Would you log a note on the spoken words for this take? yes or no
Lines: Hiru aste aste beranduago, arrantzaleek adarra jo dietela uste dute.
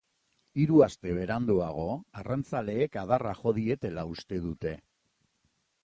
yes